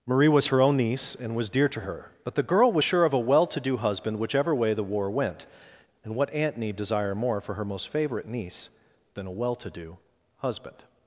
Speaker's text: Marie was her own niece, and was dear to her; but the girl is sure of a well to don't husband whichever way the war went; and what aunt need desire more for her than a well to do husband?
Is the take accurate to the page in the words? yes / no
no